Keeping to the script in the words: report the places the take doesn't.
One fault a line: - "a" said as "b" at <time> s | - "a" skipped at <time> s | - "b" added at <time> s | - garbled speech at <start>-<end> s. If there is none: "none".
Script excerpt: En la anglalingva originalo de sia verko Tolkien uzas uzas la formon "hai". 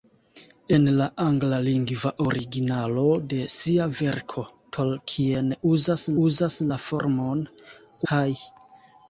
none